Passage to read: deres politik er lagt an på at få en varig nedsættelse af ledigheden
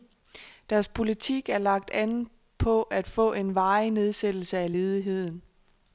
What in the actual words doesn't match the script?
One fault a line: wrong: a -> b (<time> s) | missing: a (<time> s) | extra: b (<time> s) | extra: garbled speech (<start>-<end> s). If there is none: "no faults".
no faults